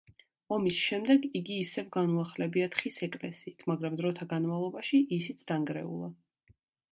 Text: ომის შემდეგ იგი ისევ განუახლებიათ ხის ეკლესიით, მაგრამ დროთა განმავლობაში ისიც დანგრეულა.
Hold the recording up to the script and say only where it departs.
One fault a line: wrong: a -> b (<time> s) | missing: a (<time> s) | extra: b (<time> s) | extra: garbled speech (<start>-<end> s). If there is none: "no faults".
no faults